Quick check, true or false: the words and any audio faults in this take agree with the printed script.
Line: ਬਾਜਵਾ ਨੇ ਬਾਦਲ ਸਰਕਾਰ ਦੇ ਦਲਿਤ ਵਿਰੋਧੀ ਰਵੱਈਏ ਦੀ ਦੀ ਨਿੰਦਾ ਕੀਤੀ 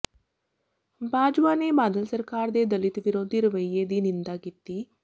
false